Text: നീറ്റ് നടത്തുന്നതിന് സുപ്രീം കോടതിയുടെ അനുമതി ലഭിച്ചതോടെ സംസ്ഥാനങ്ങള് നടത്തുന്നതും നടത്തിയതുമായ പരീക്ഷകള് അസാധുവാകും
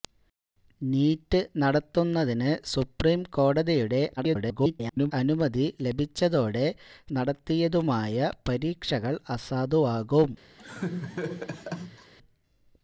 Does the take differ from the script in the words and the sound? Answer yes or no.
yes